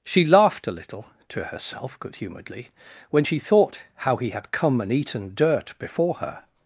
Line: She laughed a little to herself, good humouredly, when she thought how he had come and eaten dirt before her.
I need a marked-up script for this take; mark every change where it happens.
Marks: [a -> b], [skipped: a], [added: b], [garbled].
She laughed a little to herself, good humouredly, when she thought how he had come and eaten dirt before her.